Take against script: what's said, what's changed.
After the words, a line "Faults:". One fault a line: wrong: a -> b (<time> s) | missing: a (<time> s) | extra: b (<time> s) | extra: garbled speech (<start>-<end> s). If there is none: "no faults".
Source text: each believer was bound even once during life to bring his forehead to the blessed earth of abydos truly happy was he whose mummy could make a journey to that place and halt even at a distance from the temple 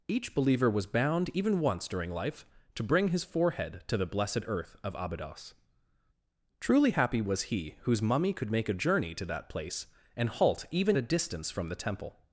each believer was bound even once during life to bring his forehead to the blessed earth of abydos truly happy was he whose mummy could make a journey to that place and halt even a distance from the temple
Faults:
missing: at (11.0 s)